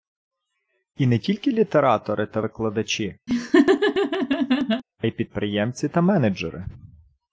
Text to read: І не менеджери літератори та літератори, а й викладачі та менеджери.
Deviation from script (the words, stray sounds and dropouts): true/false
true